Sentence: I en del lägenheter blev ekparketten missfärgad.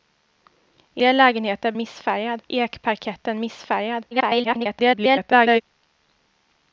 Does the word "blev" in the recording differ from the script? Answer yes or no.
yes